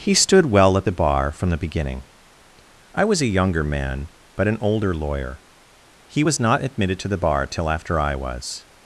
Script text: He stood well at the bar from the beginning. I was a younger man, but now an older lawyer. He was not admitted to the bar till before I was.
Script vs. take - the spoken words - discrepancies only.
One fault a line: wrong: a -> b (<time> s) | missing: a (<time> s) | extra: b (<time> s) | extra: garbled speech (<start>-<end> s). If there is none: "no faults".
missing: now (4.5 s)
wrong: before -> after (7.7 s)